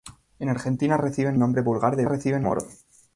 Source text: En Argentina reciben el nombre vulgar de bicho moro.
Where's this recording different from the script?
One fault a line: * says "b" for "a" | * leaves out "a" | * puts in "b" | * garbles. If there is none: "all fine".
* leaves out "el"
* says "reciben" for "bicho"